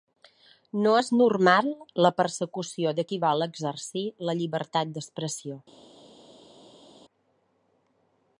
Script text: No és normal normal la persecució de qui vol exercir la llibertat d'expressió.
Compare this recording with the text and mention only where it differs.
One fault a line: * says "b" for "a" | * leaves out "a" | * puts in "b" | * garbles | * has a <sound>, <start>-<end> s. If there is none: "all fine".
* leaves out "normal"